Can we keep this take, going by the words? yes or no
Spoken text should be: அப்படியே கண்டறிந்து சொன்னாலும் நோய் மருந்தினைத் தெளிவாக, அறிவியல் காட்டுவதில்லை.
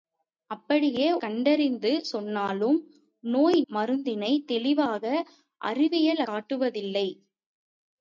yes